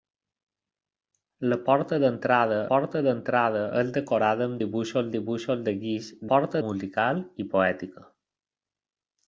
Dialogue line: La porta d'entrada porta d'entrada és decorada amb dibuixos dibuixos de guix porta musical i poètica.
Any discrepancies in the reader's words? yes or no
no